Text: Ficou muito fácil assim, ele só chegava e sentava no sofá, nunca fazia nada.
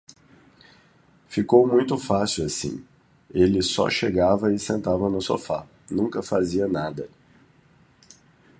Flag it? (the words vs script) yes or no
no